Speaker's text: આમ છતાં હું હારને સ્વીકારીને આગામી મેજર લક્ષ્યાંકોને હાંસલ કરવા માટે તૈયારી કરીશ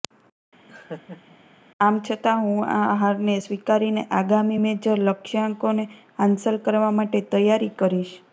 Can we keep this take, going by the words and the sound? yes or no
no